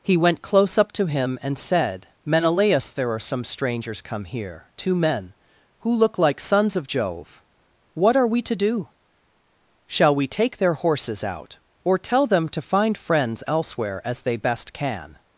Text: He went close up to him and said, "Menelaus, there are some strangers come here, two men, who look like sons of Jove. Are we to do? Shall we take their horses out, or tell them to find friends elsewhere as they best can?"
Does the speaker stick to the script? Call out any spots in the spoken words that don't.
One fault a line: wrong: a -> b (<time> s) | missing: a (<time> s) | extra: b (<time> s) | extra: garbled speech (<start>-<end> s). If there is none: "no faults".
extra: What (7.9 s)